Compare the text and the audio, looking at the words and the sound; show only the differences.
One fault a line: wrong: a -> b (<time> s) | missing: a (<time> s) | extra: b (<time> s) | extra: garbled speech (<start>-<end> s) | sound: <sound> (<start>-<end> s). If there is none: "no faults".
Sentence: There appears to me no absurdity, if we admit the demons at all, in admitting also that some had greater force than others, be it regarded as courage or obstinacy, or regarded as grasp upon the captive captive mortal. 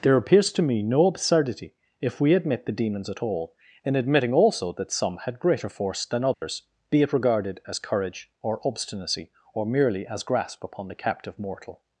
sound: dropout (6.3-6.4 s)
wrong: regarded -> merely (9.7 s)
missing: captive (11.4 s)